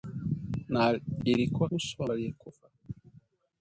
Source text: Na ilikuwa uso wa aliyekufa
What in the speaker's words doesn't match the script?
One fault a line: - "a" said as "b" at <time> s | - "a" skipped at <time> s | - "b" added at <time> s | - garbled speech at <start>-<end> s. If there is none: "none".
none